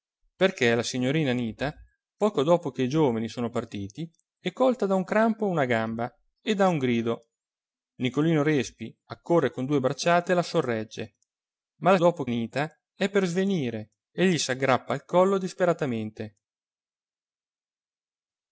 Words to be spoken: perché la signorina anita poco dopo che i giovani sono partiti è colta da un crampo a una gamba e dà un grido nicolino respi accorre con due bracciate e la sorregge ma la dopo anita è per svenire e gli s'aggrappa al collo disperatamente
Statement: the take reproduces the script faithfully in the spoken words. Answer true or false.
true